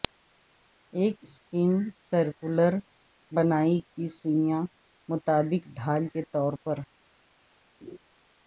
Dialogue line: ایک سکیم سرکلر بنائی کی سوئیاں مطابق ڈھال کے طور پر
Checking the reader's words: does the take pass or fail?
pass